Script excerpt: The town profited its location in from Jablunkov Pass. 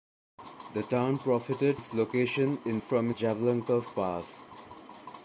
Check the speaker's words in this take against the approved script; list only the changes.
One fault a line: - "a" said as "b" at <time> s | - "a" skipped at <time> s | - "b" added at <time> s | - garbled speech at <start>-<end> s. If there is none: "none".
none